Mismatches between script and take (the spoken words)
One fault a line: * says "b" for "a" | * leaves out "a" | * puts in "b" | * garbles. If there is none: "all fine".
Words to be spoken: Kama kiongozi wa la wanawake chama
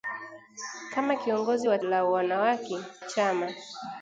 all fine